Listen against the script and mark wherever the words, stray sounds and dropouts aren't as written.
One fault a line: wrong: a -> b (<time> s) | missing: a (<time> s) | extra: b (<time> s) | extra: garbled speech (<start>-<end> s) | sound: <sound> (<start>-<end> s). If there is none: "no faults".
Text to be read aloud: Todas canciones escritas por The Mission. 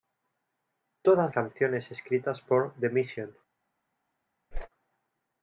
sound: whoosh (4.5-4.7 s)